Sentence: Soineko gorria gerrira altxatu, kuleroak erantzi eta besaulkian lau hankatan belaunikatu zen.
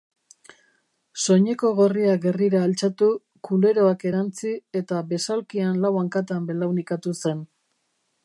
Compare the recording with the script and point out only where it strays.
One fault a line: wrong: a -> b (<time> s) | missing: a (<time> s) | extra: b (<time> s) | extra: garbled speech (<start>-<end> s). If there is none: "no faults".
no faults